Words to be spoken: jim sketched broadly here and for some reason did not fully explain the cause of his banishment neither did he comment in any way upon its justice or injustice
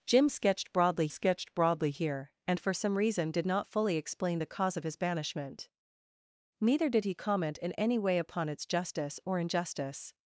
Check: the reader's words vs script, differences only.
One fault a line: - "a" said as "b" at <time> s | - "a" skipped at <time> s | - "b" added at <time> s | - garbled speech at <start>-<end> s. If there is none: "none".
- "sketched broadly" added at 1.1 s